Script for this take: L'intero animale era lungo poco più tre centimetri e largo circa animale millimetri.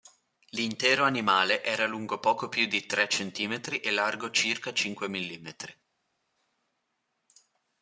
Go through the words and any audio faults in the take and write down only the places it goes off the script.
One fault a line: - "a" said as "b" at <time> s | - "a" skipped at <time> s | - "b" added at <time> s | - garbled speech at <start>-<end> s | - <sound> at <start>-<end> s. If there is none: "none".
- "di" added at 2.6 s
- "animale" said as "cinque" at 4.7 s